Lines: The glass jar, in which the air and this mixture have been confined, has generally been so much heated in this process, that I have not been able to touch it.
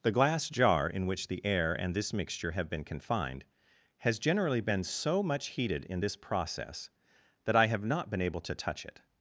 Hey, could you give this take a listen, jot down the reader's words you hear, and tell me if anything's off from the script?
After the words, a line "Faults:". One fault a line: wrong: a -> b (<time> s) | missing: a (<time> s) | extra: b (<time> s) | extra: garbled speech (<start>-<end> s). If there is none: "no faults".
The glass jar, in which the air and this mixture have been confined, has generally been so much heated in this process, that I have not been able to touch it.
Faults:
no faults